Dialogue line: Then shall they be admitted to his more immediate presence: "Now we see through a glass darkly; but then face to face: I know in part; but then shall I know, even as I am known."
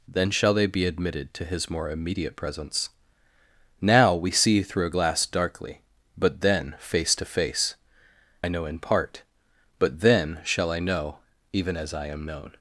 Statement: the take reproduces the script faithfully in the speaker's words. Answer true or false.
true